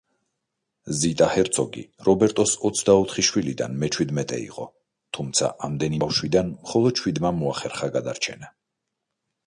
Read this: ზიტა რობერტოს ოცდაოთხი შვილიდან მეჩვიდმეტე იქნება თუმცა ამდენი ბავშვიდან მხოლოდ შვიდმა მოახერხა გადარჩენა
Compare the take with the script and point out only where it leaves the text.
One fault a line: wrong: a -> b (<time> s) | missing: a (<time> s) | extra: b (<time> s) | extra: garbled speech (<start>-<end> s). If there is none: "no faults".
extra: ჰერცოგი (1.3 s)
wrong: იქნება -> იყო (4.5 s)